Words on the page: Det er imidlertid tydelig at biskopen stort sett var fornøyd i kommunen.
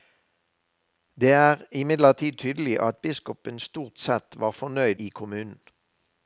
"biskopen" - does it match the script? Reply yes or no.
yes